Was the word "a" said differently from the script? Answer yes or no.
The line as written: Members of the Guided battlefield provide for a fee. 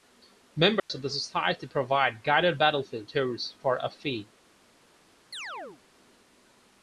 no